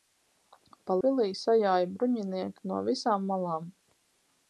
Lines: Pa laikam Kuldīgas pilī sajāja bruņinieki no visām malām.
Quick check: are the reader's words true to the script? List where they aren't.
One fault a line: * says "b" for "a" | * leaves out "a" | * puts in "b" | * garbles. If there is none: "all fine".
* leaves out "laikam Kuldīgas"